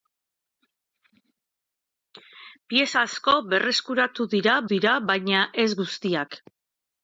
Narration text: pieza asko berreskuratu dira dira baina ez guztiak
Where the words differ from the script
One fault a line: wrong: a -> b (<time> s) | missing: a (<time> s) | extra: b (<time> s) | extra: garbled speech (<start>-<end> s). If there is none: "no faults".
no faults